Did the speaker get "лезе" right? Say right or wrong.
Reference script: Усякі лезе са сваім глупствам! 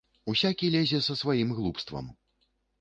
right